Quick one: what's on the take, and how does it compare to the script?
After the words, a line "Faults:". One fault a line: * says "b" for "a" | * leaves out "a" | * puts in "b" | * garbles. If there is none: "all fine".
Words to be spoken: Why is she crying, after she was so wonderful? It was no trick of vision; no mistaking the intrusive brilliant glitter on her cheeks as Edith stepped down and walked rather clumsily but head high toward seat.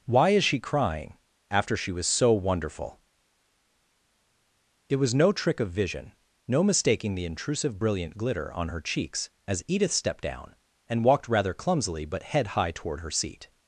Why is she crying, after she was so wonderful? It was no trick of vision; no mistaking the intrusive brilliant glitter on her cheeks as Edith stepped down and walked rather clumsily but head high toward her seat.
Faults:
* puts in "her"